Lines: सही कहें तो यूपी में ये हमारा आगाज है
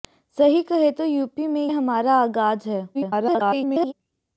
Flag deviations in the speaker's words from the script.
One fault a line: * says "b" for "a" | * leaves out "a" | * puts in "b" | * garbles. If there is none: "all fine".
* leaves out "ये"
* garbles